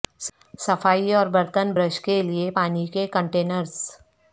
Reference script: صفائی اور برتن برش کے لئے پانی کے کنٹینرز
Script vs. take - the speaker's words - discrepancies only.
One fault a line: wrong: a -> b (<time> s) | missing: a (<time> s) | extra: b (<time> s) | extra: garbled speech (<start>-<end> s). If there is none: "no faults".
no faults